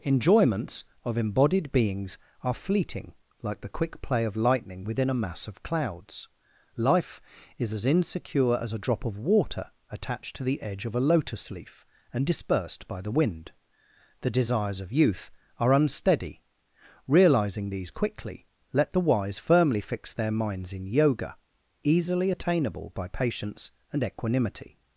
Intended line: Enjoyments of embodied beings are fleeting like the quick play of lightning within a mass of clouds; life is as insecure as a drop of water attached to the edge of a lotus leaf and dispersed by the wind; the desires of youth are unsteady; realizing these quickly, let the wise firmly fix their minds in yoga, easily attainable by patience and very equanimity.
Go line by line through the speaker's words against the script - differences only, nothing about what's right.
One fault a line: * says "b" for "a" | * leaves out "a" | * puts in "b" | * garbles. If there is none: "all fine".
* leaves out "very"